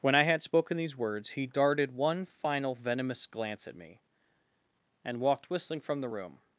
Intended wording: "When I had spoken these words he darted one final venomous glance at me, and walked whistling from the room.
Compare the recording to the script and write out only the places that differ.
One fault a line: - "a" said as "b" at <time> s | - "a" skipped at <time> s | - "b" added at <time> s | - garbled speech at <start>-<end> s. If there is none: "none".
none